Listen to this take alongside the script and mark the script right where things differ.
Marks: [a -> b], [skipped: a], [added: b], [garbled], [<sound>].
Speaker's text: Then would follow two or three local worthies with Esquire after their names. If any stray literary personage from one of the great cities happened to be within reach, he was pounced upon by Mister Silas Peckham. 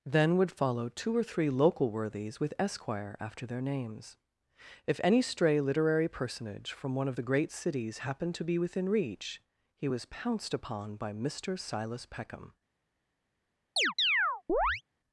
Then would follow two or three local worthies with Esquire after their names. If any stray literary personage from one of the great cities happened to be within reach, he was pounced upon by Mister Silas Peckham. [chirp]